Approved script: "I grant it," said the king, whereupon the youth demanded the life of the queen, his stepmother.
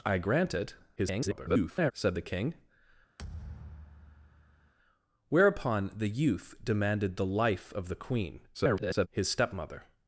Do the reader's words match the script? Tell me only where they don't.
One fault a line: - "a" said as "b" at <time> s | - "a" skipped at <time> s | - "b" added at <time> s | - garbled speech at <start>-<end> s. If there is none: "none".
- garbled speech at 1.0-1.9 s
- garbled speech at 8.5-9.1 s